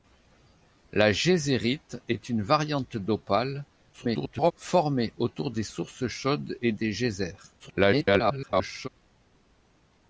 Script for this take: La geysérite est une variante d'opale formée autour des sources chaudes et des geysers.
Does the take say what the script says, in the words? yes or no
no